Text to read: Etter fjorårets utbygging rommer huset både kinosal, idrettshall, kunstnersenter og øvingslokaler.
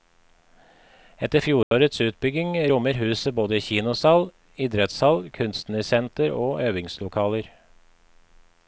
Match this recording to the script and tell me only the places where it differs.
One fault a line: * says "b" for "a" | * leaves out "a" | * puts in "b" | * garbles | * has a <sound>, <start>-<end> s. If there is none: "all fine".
* has a dropout, 1.6-1.7 s